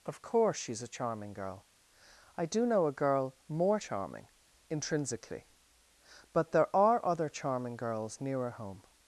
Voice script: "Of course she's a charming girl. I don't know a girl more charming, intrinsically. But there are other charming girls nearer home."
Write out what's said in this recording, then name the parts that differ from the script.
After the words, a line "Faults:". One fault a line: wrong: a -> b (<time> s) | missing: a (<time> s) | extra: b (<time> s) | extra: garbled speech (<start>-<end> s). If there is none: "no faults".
"Of course she's a charming girl. I do know a girl more charming, intrinsically. But there are other charming girls nearer home."
Faults:
wrong: don't -> do (2.5 s)